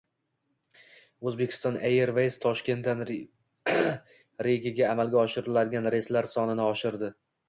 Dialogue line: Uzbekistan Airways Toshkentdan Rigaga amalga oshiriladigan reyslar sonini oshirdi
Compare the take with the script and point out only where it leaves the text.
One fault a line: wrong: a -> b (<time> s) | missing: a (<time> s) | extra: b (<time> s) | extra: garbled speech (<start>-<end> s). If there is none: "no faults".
no faults